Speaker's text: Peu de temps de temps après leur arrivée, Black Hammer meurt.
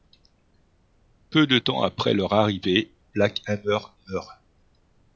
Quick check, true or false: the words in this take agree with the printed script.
false